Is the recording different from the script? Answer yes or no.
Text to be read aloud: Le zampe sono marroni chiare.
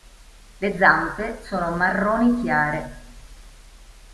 no